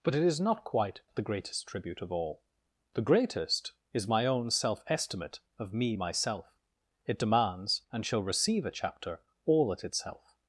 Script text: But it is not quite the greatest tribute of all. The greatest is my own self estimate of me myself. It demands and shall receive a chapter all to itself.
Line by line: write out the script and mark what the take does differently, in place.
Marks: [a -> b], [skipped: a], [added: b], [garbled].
But it is not quite the greatest tribute of all. The greatest is my own self estimate of me myself. It demands and shall receive a chapter all [to -> at] itself.